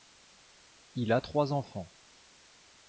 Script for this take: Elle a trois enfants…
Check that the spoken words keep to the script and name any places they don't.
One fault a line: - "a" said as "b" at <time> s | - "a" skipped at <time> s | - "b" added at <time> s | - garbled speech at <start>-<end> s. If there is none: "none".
- "Elle" said as "Il" at 0.9 s